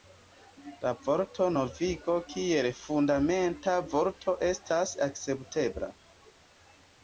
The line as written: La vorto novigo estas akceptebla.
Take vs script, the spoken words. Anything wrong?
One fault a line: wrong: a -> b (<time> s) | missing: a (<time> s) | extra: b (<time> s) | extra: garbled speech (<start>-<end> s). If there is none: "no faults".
extra: kiel fundamenta vorto (2.3 s)